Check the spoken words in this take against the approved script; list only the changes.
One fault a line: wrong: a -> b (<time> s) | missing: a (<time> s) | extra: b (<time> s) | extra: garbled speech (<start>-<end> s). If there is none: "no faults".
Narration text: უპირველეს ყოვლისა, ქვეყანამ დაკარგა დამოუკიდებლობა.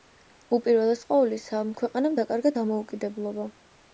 no faults